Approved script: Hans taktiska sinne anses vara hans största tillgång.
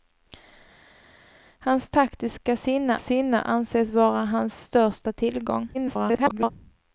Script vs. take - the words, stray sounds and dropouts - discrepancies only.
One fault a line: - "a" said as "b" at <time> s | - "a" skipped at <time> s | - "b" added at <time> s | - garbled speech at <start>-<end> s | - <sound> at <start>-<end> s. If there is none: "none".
- "sinne" added at 3.0 s
- garbled speech at 5.7-6.5 s